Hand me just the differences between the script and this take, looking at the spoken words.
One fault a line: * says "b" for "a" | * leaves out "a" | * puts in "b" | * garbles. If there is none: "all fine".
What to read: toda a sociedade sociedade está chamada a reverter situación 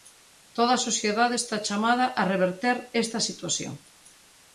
* leaves out "sociedade"
* puts in "esta"